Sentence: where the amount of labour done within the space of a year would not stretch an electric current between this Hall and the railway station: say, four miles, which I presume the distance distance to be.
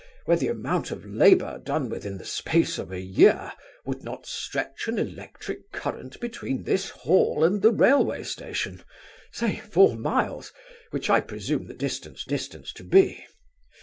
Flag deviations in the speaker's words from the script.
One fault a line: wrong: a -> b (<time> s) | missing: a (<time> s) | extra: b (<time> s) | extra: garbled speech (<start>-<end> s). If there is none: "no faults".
no faults